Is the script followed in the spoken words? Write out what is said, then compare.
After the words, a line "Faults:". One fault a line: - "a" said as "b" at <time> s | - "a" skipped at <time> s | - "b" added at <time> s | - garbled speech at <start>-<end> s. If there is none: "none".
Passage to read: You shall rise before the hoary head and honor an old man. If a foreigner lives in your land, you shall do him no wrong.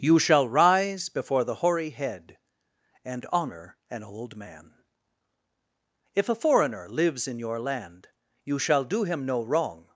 You shall rise before the hoary head and honor an old man. If a foreigner lives in your land, you shall do him no wrong.
Faults:
none